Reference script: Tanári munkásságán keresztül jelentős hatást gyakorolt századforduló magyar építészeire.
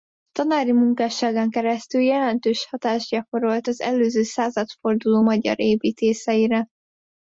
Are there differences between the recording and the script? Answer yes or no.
yes